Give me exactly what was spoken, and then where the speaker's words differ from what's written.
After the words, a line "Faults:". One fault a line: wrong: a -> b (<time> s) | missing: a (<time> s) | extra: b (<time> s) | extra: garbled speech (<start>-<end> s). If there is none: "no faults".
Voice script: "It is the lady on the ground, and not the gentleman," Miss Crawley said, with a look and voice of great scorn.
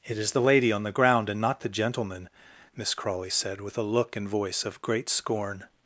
"It is the lady on the ground, and not the gentleman," Miss Crawley said, with a look and voice of great scorn.
Faults:
no faults